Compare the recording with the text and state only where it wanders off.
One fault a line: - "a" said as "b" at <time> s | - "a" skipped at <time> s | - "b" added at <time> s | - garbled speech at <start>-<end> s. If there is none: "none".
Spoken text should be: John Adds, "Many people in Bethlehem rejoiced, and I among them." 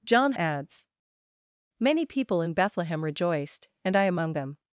none